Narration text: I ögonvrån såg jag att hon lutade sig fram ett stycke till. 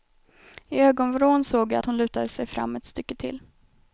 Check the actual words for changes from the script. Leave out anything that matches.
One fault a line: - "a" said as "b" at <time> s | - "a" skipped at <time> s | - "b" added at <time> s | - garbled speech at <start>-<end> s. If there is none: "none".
none